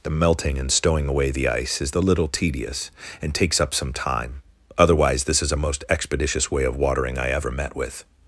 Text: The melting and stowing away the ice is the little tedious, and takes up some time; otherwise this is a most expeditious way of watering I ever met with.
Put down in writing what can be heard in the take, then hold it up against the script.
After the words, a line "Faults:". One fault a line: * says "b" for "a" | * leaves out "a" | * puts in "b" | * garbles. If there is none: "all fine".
The melting and stowing away the ice is the little tedious, and takes up some time; otherwise this is a most expeditious way of watering I ever met with.
Faults:
all fine